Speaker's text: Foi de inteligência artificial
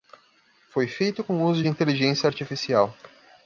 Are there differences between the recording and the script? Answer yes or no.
yes